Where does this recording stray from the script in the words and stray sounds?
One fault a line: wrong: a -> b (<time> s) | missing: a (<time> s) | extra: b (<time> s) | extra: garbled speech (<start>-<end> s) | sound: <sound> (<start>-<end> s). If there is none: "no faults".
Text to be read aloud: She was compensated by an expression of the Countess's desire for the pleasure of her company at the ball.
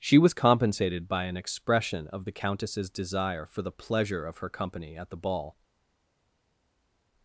no faults